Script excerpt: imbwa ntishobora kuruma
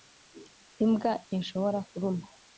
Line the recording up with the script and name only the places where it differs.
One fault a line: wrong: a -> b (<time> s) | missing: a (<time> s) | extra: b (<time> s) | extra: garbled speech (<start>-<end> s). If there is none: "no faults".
no faults